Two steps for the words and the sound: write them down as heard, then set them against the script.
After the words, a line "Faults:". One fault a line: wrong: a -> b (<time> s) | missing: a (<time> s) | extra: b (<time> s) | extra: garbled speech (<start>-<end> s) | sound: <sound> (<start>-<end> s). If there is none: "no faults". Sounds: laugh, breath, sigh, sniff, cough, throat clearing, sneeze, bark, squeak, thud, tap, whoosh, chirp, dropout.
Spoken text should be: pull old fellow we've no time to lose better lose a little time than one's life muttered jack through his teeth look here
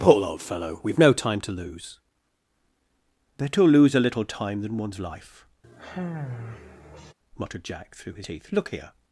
pull old fellow we've no time to lose better lose a little time than one's life muttered jack through his teeth look here
Faults:
sound: sigh (5.6-7.1 s)